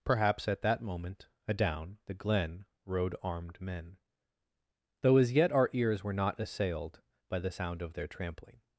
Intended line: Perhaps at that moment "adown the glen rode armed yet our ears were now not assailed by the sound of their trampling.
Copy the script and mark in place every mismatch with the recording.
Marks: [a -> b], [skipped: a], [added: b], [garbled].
Perhaps at that moment "adown the glen rode armed [added: men though as] yet our ears were [skipped: now] not assailed by the sound of their trampling.